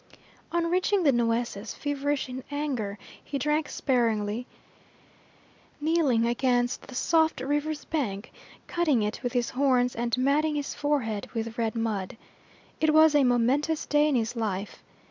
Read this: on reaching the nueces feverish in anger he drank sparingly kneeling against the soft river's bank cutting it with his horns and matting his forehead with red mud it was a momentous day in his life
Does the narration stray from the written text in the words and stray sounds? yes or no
no